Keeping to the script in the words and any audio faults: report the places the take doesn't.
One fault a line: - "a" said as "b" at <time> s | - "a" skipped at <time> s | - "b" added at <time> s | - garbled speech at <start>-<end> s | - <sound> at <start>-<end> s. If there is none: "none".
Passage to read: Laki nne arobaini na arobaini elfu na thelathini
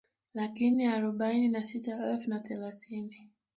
- "arobaini" said as "sita" at 1.6 s